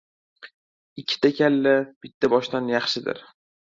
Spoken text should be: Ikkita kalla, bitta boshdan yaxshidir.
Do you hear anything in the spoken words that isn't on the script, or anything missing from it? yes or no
no